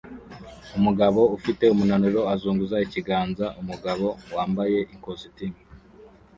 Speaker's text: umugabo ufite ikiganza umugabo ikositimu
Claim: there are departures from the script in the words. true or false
true